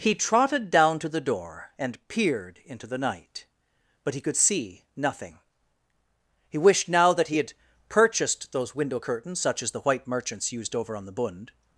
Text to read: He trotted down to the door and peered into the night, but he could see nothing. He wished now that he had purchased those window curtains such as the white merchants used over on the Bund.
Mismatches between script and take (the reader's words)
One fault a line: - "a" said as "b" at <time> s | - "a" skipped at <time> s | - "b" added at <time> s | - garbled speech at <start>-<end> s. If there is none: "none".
none